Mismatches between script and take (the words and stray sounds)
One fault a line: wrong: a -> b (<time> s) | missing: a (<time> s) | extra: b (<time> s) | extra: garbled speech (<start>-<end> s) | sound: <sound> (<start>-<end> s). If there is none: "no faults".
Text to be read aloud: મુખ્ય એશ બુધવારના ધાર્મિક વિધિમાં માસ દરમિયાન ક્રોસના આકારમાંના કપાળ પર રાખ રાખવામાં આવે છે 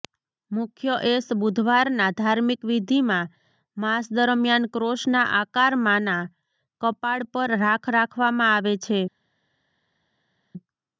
no faults